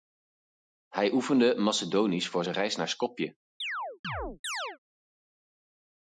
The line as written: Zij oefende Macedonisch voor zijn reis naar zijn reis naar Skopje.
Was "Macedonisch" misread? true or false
false